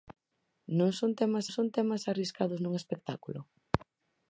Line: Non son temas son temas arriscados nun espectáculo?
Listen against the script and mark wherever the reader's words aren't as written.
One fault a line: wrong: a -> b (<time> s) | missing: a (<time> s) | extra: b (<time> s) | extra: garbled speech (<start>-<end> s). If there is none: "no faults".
no faults